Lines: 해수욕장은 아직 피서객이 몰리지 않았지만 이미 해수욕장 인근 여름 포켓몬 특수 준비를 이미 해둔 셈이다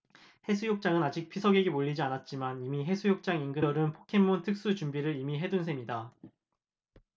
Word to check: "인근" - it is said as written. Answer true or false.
true